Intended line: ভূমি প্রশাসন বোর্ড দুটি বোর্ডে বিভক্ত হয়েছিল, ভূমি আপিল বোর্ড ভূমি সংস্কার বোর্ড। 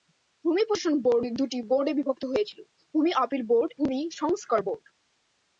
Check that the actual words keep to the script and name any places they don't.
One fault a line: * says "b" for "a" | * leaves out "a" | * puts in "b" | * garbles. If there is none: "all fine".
all fine